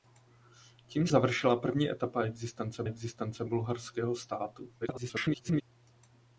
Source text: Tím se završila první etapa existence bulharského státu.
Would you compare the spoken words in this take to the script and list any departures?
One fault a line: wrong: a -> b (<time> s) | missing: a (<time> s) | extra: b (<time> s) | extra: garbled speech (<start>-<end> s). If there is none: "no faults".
missing: se (1.1 s)
extra: existence (2.8 s)
extra: garbled speech (4.8-5.6 s)